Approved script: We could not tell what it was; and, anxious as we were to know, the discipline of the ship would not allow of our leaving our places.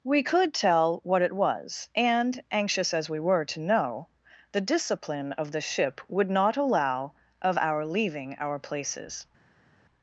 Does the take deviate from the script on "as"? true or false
false